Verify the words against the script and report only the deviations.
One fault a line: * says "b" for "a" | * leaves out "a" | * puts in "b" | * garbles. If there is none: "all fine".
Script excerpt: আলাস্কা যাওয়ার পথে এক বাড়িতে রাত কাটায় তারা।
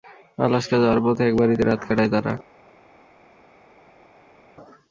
all fine